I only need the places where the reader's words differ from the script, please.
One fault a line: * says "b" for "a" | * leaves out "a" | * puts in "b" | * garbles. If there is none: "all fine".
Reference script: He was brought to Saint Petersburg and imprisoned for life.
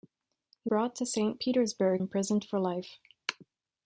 * leaves out "was"
* leaves out "and"